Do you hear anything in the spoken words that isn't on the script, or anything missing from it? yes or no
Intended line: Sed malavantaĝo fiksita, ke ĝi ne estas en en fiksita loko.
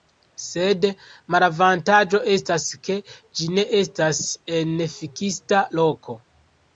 yes